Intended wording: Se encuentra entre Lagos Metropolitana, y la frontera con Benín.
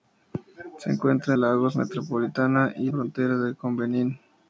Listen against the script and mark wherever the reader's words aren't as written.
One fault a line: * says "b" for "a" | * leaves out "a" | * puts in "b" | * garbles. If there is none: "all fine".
* leaves out "entre"
* leaves out "la"